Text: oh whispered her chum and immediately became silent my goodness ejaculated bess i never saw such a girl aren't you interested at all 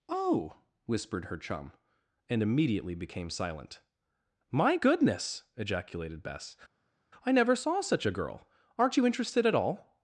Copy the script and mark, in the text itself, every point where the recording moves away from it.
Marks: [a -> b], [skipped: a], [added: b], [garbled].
oh whispered her chum and immediately became silent my goodness ejaculated bess i never saw such a girl aren't you interested at all